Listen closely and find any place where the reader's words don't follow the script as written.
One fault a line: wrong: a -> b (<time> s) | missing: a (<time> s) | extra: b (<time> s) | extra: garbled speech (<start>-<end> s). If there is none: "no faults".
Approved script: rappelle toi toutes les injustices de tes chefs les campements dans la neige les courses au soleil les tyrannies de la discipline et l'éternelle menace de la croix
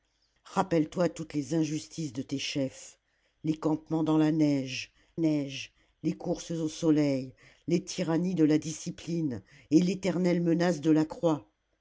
extra: neige (5.1 s)